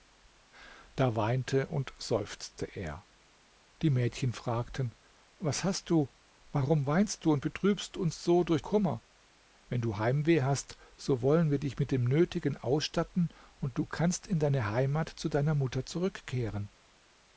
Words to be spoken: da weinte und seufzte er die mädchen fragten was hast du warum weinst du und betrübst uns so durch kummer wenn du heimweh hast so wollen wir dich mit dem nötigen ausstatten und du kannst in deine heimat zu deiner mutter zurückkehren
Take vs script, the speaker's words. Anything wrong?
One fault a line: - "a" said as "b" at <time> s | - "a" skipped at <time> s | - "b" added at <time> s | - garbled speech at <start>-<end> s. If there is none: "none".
none